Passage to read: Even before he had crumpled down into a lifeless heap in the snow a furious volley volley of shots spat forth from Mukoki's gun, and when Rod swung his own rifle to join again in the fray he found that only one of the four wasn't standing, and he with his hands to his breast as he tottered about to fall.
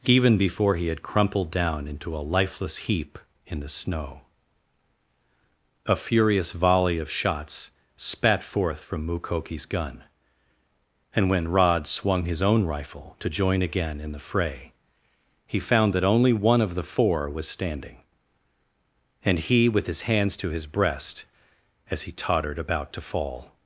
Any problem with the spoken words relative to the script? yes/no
yes